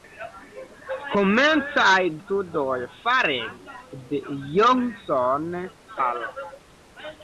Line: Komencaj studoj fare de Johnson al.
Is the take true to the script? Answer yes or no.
yes